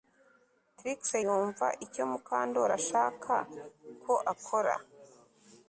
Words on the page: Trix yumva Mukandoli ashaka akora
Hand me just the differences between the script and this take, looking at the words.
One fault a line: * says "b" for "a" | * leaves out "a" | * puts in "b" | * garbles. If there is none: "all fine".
* puts in "icyo"
* puts in "ko"